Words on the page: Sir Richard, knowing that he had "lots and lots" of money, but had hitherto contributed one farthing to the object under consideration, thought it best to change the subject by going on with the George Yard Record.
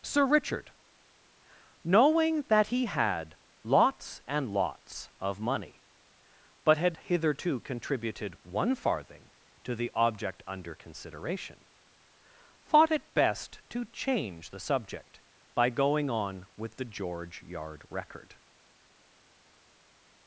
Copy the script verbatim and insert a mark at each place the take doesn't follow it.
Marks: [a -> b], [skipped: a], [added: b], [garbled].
Sir Richard, knowing that he had "lots and lots" of money, but had hitherto contributed one farthing to the object under consideration, thought it best to change the subject by going on with the George Yard Record.